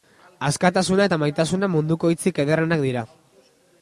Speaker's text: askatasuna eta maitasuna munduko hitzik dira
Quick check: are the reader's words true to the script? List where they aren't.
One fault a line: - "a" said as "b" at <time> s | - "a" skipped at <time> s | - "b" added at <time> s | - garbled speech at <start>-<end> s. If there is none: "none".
- "ederrenak" added at 2.4 s